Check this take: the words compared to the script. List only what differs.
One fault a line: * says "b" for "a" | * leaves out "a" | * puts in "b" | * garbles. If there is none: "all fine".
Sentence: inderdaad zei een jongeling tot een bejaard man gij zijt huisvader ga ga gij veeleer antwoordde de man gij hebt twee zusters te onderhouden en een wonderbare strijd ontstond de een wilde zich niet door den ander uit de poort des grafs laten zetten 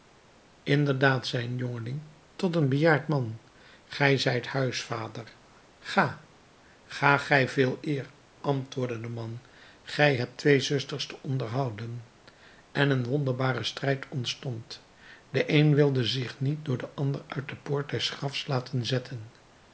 all fine